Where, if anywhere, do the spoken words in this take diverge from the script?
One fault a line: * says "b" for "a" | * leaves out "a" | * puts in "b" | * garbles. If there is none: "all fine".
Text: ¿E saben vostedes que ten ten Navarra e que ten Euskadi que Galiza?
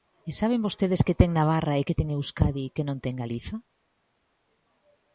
* leaves out "ten"
* puts in "non ten"